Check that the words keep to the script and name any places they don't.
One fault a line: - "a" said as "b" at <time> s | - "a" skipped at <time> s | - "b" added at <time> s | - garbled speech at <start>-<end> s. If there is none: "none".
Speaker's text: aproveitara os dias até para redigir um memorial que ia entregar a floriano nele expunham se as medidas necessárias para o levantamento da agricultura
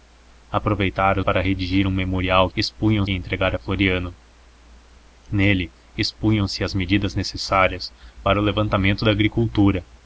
- "os dias até" skipped at 1.2 s
- "que" said as "expunham" at 2.5 s